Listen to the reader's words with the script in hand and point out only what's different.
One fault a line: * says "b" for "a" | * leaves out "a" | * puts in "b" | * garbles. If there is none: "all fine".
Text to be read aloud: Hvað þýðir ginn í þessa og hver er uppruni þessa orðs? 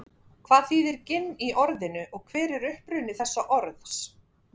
* says "orðinu" for "þessa"